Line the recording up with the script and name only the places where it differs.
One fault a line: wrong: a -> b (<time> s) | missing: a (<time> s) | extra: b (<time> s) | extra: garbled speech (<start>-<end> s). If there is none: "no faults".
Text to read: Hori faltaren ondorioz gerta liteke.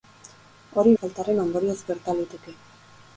no faults